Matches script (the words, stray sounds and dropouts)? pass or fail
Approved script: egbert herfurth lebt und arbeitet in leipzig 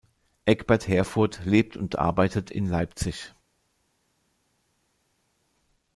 pass